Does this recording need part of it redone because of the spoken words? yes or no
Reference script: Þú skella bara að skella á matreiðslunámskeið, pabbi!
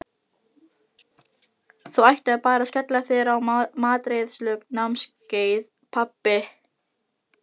yes